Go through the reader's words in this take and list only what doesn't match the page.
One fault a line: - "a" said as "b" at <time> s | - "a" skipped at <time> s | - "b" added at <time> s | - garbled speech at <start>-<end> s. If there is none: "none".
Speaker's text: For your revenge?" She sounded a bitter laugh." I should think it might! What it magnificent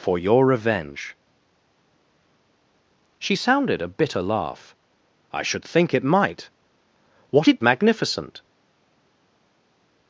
none